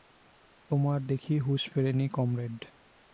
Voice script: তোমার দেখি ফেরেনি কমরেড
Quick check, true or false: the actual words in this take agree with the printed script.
false